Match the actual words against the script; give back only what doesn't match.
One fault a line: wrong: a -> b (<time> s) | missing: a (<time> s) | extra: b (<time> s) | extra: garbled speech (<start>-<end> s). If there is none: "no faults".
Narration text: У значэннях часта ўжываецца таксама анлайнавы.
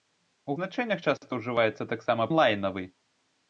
no faults